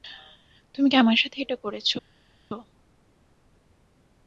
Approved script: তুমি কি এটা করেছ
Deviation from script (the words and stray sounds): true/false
true